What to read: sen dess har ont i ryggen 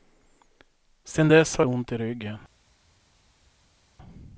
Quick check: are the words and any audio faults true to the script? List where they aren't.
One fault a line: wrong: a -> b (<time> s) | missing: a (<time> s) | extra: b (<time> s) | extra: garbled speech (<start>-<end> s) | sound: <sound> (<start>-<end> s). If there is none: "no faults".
no faults